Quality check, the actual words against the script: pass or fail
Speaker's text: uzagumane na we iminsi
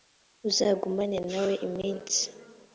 pass